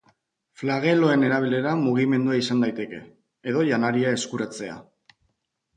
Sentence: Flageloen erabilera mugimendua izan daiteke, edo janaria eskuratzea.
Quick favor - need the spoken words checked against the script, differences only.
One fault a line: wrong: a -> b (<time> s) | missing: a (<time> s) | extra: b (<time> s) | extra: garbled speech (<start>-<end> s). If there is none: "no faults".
no faults